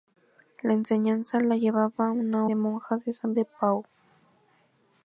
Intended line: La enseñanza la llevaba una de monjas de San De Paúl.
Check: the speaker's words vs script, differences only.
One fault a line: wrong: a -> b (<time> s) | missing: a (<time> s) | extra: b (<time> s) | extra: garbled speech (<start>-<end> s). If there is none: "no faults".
no faults